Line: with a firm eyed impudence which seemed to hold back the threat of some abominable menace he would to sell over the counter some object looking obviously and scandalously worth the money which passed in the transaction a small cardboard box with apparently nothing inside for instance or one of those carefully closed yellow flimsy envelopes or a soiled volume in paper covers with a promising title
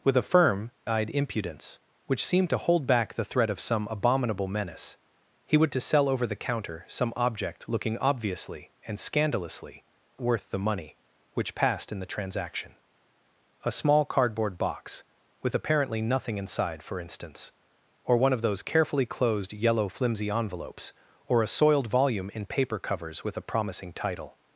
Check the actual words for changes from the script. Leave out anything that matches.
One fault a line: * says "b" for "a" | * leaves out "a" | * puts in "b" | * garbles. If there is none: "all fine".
all fine